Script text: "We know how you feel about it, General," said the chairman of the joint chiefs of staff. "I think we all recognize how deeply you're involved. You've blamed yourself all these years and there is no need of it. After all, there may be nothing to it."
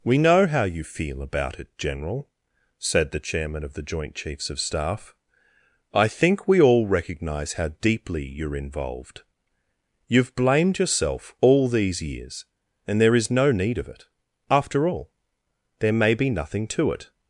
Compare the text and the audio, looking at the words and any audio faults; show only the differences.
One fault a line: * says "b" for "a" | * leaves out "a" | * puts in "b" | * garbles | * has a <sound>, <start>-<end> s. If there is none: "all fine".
all fine